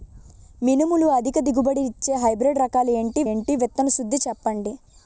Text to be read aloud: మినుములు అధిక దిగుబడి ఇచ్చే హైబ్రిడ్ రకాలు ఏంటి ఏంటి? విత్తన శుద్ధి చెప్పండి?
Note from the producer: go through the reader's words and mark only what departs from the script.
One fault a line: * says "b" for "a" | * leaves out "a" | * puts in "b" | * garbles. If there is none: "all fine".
all fine